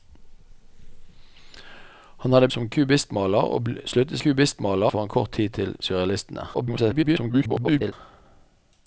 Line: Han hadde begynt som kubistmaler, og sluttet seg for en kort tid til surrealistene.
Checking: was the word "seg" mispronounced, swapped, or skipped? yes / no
yes